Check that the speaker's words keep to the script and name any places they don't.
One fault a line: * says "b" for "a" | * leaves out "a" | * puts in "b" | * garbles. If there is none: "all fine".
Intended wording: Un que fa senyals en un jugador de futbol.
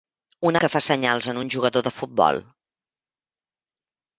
all fine